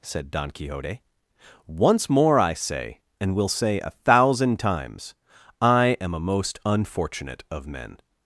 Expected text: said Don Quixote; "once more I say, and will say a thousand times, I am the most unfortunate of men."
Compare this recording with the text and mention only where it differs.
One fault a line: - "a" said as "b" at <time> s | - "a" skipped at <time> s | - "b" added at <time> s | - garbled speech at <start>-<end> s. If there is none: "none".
- "the" said as "a" at 6.1 s